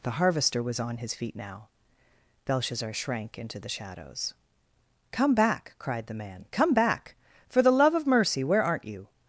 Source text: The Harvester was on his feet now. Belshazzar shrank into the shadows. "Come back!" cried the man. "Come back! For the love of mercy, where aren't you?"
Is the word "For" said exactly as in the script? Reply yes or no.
yes